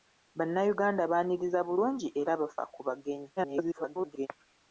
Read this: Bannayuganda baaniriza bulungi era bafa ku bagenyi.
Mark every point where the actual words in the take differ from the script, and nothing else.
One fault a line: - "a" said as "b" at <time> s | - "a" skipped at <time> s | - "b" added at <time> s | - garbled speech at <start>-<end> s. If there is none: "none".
- garbled speech at 3.4-4.3 s